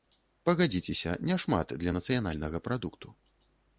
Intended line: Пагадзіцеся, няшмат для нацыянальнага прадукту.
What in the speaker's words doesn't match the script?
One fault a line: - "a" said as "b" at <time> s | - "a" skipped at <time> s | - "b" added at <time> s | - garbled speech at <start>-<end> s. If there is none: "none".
none